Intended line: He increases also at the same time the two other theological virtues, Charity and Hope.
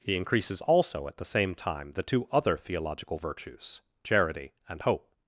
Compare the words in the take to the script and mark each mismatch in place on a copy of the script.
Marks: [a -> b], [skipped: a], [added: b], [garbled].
He increases also at the same time the two other theological virtues, Charity and Hope.